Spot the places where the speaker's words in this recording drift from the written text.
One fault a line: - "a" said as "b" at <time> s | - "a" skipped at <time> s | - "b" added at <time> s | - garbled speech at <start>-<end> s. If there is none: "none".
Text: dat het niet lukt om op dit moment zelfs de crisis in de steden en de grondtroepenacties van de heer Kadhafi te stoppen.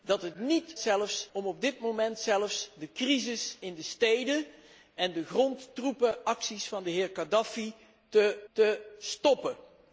- "lukt" said as "zelfs" at 0.8 s
- "te" added at 8.5 s